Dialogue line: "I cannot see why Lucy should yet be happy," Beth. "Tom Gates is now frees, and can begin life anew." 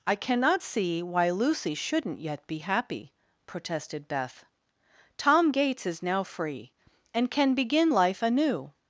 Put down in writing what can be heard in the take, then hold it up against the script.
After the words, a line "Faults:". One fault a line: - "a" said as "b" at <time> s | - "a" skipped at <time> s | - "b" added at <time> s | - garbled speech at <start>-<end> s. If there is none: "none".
"I cannot see why Lucy shouldn't yet be happy," protested Beth. "Tom Gates is now free, and can begin life anew."
Faults:
- "should" said as "shouldn't" at 1.7 s
- "protested" added at 3.5 s
- "frees" said as "free" at 6.2 s